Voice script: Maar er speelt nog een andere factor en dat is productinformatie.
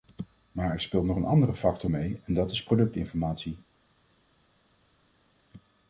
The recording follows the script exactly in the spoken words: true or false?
false